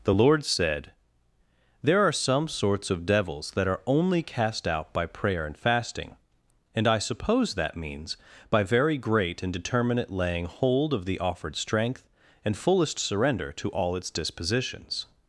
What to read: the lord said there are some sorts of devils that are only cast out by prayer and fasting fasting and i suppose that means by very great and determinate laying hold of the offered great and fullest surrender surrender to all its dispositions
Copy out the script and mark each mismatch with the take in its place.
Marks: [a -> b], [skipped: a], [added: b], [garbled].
the lord said there are some sorts of devils that are only cast out by prayer and fasting [skipped: fasting] and i suppose that means by very great and determinate laying hold of the offered [great -> strength] and fullest surrender [skipped: surrender] to all its dispositions